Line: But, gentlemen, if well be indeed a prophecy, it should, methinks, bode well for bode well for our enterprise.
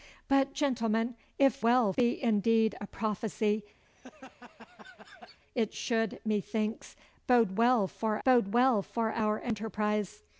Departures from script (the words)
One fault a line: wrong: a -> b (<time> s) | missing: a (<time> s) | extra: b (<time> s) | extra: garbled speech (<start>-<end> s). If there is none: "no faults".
no faults